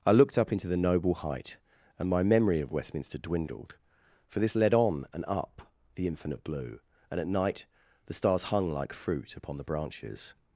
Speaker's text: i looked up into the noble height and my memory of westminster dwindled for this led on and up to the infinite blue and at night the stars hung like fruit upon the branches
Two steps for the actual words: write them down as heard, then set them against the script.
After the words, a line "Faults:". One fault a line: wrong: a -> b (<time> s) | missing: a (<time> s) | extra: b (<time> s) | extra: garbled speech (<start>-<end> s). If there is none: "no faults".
i looked up into the noble height and my memory of westminster dwindled for this led on and up the infinite blue and at night the stars hung like fruit upon the branches
Faults:
missing: to (5.7 s)